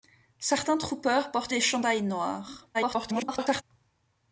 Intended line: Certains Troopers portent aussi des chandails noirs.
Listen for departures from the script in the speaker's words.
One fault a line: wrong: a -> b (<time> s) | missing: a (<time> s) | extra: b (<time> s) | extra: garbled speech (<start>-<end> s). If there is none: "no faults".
missing: aussi (1.5 s)
extra: garbled speech (2.7-3.6 s)